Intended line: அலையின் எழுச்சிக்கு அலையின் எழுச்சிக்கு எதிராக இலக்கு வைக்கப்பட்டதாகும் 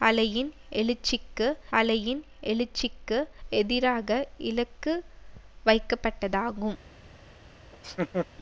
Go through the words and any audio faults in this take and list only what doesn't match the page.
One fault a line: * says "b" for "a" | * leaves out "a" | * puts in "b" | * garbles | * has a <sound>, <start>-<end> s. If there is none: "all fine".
* has a laugh, 7.7-8.3 s